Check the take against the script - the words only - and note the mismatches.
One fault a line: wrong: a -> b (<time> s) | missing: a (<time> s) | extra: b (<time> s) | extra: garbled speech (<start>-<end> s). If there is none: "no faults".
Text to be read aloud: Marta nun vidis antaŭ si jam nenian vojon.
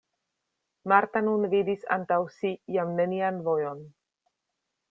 no faults